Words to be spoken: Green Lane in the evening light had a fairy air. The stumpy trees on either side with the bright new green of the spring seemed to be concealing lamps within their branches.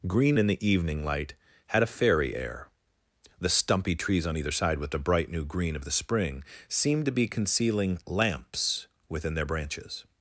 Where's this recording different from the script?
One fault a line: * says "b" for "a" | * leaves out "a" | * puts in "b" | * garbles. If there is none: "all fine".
* leaves out "Lane"